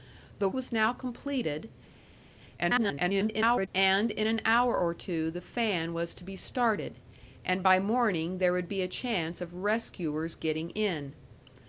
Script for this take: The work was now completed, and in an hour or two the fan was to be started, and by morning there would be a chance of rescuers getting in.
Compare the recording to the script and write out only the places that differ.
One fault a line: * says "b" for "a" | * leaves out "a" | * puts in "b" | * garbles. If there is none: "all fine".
* leaves out "work"
* garbles